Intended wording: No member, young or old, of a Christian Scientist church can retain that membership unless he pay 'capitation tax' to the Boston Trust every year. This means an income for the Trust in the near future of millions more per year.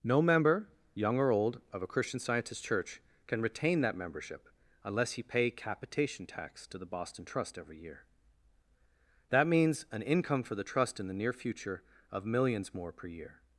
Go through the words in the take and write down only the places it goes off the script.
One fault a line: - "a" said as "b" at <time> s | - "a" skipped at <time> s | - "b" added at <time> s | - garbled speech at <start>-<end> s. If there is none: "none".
- "This" said as "That" at 9.3 s